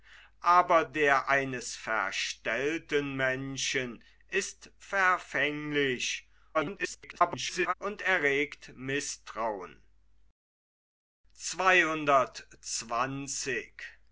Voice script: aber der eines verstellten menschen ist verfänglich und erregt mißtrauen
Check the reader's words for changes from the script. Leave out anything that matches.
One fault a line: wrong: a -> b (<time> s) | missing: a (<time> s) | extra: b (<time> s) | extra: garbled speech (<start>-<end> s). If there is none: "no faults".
extra: garbled speech (6.5-7.7 s)